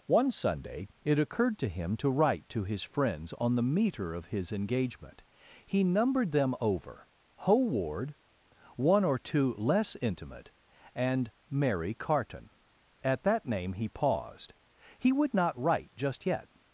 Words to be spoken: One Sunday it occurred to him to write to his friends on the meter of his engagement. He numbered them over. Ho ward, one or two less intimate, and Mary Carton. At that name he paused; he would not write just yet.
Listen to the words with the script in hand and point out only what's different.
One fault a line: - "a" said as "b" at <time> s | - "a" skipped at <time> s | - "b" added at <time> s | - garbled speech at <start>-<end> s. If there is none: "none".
none